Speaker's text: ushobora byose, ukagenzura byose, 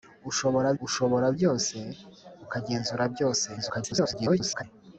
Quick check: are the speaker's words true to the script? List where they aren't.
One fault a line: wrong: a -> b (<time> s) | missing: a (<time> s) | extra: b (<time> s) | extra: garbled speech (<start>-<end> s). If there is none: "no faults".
extra: ushobora (0.9 s)
extra: garbled speech (3.6-4.6 s)